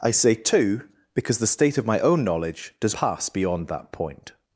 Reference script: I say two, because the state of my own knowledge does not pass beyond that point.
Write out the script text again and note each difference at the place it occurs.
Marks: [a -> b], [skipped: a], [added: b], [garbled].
I say two, because the state of my own knowledge does [skipped: not] pass beyond that point.